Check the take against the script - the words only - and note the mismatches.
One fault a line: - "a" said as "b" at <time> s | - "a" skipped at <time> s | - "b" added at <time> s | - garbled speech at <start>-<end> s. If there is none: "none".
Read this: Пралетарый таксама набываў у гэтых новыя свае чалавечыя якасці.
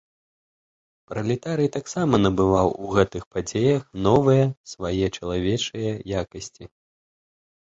- "падзеях" added at 3.4 s